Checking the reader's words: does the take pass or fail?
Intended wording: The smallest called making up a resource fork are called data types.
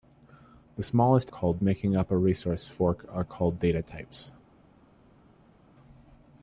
pass